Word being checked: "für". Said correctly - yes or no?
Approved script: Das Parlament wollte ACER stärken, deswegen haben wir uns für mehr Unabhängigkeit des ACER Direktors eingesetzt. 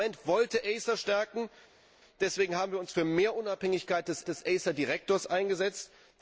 yes